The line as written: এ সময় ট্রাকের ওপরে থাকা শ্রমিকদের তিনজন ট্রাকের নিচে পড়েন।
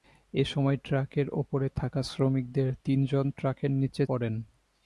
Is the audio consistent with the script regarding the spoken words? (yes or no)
yes